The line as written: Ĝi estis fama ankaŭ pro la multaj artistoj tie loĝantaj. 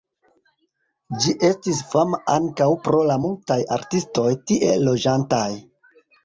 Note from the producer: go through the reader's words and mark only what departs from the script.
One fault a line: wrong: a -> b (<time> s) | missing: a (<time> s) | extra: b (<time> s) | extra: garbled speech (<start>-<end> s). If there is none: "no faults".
no faults